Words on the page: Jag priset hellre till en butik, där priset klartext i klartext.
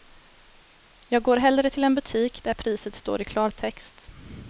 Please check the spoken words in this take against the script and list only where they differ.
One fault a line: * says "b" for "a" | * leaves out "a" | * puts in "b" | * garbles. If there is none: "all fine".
* says "går" for "priset"
* says "står" for "klartext"